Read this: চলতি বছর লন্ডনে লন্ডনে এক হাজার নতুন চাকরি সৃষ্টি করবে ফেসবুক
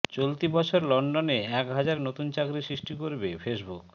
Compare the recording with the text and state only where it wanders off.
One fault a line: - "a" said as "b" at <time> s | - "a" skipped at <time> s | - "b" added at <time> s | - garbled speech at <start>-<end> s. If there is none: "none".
- "লন্ডনে" skipped at 1.4 s